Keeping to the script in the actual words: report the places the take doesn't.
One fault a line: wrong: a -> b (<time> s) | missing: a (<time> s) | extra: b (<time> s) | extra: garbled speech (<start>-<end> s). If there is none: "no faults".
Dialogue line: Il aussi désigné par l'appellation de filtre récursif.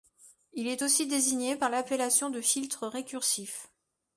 extra: est (0.7 s)